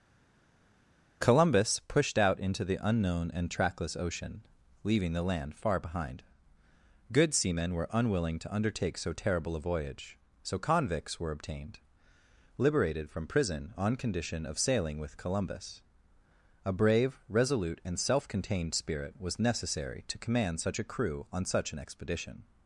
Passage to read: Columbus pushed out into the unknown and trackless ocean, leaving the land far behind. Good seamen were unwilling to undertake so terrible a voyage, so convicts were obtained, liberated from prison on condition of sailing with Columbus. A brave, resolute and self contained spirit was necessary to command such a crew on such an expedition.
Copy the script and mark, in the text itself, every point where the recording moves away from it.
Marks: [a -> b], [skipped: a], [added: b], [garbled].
Columbus pushed out into the unknown and trackless ocean, leaving the land far behind. Good seamen were unwilling to undertake so terrible a voyage, so convicts were obtained, liberated from prison on condition of sailing with Columbus. A brave, resolute and self contained spirit was necessary to command such a crew on such an expedition.